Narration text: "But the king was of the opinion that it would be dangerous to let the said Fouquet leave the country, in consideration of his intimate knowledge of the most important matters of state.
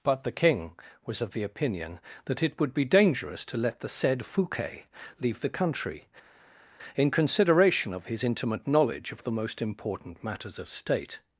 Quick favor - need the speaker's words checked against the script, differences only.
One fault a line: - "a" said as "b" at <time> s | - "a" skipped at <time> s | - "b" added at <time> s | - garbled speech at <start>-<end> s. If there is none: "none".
none